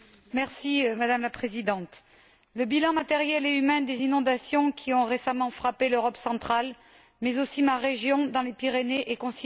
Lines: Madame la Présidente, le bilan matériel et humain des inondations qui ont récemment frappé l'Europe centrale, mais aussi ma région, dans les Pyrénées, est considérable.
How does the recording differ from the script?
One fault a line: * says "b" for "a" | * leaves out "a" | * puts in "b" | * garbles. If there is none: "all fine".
all fine